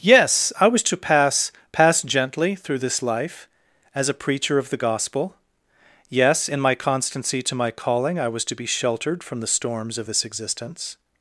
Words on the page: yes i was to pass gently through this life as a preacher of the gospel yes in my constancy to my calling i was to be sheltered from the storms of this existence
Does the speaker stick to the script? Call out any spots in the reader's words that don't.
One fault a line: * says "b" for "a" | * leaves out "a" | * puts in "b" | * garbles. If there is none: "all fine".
* puts in "pass"